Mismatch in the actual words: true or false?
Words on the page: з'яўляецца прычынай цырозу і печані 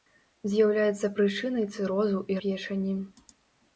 false